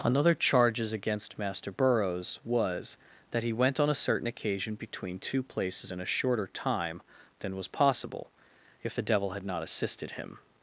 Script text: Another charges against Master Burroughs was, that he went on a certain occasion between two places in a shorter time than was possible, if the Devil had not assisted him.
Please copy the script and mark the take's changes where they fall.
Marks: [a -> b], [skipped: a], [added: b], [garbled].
Another charges against Master Burroughs was, that he went on a certain occasion between two places in a shorter time than was possible, if the Devil had not assisted him.